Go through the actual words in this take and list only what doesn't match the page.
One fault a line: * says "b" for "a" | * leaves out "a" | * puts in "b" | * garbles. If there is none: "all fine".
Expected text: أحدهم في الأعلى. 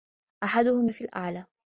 all fine